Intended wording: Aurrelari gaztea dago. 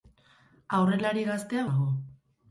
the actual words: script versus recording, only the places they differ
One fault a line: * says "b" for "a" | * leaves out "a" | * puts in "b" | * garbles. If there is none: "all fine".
all fine